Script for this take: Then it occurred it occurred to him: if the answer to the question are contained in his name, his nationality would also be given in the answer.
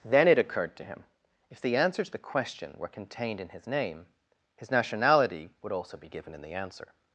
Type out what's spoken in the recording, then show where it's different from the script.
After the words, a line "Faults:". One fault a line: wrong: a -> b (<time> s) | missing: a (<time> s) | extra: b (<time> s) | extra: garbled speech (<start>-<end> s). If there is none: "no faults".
Then it occurred to him: if the answer to the question were contained in his name, his nationality would also be given in the answer.
Faults:
missing: it occurred (0.8 s)
wrong: are -> were (2.8 s)